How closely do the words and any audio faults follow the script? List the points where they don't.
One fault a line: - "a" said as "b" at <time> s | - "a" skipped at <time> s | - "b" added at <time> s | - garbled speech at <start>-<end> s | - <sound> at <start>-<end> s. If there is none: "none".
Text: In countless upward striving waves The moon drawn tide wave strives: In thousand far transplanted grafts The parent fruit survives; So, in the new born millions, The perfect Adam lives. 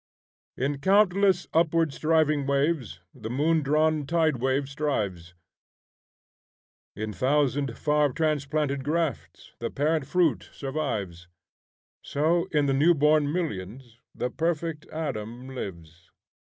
none